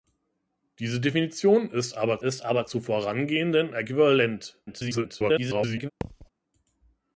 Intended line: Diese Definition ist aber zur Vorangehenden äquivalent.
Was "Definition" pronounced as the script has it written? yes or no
yes